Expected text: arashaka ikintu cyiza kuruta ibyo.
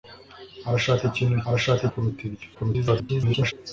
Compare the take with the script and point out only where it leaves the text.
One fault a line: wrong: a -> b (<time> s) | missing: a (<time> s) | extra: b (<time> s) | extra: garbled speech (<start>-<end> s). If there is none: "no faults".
wrong: cyiza -> arashaka (1.5 s)
extra: garbled speech (2.5-3.5 s)